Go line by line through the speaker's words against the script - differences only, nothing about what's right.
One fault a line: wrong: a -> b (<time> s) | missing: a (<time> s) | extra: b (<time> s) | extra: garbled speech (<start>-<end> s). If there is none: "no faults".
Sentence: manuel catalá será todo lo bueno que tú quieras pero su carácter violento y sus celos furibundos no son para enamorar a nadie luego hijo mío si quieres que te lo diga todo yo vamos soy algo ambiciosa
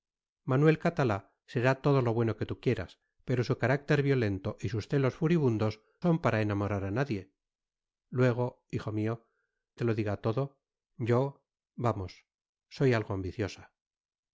missing: no (5.8 s)
missing: si quieres que (9.3 s)